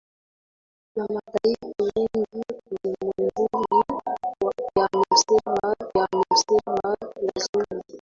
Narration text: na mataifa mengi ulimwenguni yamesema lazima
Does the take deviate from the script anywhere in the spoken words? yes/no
yes